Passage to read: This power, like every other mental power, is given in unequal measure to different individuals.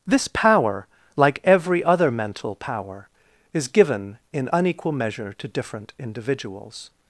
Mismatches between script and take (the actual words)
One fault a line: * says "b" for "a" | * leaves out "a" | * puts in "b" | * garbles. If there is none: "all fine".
all fine